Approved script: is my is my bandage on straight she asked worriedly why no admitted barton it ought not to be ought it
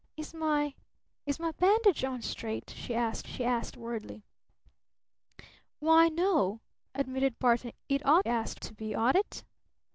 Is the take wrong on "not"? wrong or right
wrong